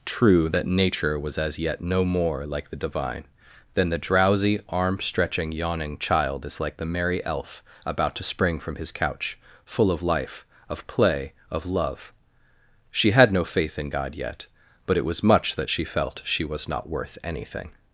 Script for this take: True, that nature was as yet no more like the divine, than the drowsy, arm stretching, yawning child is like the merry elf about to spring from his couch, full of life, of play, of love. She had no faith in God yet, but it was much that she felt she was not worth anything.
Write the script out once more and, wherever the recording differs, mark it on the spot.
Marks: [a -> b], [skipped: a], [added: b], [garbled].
True, that nature was as yet no more like the divine, than the drowsy, arm stretching, yawning child is like the merry elf about to spring from his couch, full of life, of play, of love. She had no faith in God yet, but it was much that she felt she was not worth anything.